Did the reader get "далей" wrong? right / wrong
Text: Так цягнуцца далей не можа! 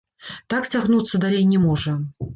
right